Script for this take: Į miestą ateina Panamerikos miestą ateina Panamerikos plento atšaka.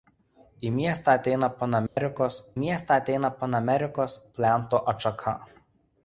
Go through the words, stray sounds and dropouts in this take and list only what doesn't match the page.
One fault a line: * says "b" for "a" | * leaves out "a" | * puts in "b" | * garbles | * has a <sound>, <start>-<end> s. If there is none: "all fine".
* has a dropout, 1.9-2.0 s